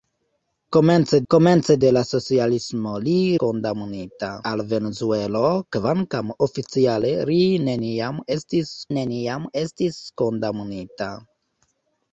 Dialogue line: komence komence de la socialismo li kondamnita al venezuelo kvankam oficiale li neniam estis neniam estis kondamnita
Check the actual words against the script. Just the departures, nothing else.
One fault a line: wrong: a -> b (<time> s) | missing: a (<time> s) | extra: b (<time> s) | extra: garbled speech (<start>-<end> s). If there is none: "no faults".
no faults